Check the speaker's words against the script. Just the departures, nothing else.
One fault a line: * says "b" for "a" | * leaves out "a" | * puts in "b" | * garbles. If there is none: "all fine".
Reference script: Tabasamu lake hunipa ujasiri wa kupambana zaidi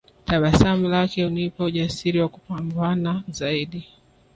all fine